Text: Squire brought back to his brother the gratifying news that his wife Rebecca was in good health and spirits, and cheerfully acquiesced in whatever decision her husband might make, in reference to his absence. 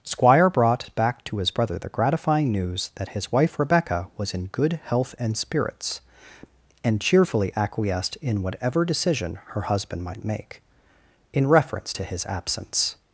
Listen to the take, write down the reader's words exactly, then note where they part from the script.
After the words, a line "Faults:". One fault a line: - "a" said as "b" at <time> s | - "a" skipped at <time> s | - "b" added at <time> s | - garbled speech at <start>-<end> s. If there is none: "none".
Squire brought back to his brother the gratifying news that his wife Rebecca was in good health and spirits, and cheerfully acquiesced in whatever decision her husband might make, in reference to his absence.
Faults:
none